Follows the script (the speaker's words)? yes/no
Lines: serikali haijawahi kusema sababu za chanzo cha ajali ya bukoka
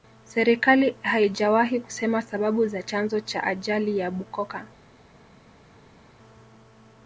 yes